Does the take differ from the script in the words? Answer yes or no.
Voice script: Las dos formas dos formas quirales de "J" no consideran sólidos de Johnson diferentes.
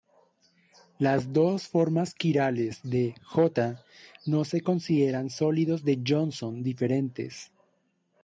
yes